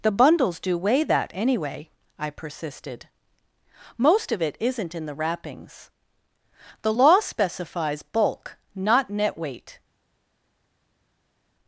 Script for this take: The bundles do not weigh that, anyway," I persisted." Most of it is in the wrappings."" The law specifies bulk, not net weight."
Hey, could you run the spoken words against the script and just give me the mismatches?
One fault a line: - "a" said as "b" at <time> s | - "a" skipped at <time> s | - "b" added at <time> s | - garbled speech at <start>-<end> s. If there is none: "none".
- "not" skipped at 0.8 s
- "is" said as "isn't" at 4.6 s